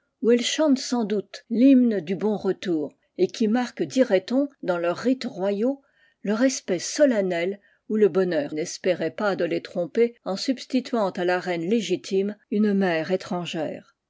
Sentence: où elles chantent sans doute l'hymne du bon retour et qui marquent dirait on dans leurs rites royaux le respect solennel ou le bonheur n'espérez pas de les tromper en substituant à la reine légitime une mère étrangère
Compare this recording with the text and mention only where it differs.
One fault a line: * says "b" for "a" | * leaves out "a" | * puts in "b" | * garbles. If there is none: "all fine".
all fine